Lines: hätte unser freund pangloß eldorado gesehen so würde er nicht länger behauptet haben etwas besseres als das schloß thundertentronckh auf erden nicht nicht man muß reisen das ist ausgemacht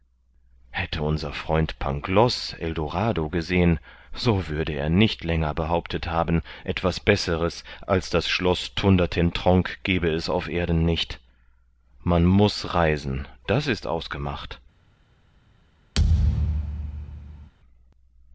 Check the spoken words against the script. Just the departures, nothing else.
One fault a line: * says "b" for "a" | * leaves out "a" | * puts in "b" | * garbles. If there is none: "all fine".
* puts in "gebe es"
* leaves out "nicht"